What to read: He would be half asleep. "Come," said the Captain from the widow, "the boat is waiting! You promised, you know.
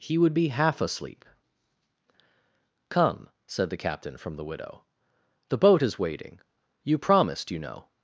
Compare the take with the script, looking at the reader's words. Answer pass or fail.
pass